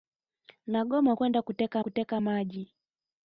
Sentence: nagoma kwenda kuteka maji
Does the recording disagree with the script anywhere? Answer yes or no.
yes